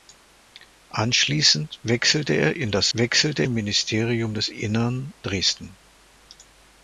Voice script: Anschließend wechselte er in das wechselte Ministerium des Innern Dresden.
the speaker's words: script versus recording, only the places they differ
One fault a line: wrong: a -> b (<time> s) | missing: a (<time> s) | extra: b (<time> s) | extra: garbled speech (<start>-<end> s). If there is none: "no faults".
no faults